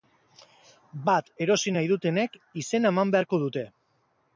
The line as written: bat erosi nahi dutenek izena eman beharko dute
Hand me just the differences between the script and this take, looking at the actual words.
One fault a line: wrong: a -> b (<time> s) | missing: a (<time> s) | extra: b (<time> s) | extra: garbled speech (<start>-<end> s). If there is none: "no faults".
no faults